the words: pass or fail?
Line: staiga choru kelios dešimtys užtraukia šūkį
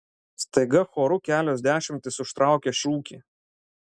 pass